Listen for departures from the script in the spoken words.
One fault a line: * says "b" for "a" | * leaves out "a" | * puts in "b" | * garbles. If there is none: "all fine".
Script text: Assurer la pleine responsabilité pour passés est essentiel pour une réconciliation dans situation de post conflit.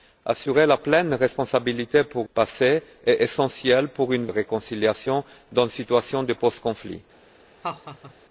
all fine